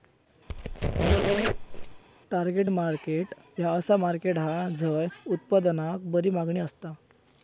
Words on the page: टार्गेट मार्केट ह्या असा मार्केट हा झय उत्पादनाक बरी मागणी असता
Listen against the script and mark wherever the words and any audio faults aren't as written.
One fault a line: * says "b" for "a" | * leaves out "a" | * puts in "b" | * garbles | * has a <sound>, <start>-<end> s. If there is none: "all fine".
* has a squeak, 0.5-2.0 s